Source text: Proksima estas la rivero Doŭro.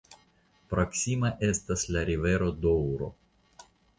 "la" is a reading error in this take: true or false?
false